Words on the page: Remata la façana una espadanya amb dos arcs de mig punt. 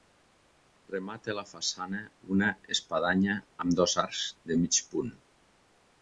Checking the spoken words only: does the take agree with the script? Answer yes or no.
yes